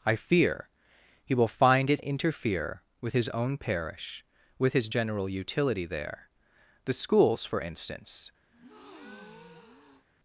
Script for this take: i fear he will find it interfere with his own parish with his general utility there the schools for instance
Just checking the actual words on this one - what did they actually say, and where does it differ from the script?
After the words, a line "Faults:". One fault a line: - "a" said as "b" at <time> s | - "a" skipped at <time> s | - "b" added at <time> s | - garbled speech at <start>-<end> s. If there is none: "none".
i fear he will find it interfere with his own parish with his general utility there the schools for instance
Faults:
none